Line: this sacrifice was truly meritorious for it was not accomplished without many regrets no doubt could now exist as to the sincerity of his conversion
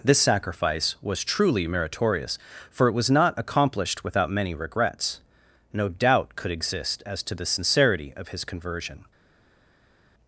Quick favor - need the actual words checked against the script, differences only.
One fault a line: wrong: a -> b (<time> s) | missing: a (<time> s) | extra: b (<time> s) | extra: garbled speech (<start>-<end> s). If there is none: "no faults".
missing: now (6.5 s)